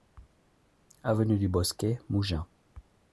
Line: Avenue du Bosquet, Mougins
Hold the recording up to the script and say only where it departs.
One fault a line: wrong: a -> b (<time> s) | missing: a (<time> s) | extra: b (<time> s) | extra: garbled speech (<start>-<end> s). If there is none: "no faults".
no faults